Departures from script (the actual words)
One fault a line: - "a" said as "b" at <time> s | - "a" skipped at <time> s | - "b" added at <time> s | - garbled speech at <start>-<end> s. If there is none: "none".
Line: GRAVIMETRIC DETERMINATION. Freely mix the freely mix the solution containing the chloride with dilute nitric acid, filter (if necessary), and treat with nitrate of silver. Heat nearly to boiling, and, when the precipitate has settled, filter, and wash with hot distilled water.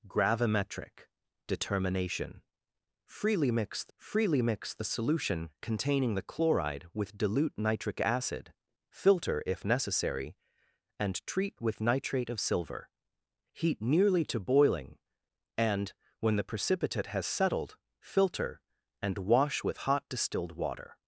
none